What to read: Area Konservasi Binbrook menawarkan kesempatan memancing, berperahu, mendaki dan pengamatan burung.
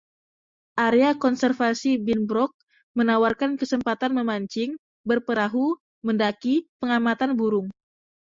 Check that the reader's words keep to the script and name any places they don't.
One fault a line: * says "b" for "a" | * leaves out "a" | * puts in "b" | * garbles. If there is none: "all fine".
* leaves out "dan"